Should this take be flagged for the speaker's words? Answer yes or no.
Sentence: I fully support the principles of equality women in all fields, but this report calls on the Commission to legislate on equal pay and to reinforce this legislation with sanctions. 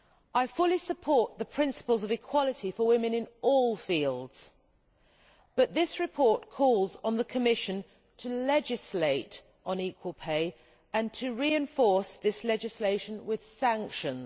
yes